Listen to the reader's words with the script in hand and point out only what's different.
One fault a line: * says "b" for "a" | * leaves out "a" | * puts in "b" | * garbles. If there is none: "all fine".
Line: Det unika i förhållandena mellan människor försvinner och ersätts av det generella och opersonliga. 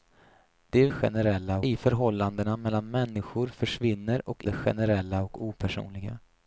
* says "generella" for "unika"
* leaves out "ersätts av"